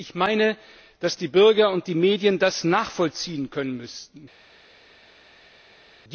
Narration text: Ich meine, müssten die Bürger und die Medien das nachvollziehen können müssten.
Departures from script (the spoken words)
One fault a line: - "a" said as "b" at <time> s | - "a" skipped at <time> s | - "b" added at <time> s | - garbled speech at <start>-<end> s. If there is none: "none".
- "müssten" said as "dass" at 1.0 s